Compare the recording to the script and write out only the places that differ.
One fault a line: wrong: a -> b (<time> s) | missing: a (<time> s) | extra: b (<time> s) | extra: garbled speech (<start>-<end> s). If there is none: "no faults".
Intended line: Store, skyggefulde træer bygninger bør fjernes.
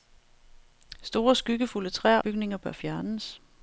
no faults